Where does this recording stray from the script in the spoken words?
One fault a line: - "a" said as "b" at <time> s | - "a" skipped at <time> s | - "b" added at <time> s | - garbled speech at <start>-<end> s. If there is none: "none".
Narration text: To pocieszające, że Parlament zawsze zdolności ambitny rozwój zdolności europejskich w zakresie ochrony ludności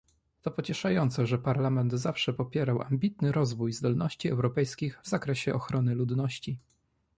- "zdolności" said as "popierał" at 2.3 s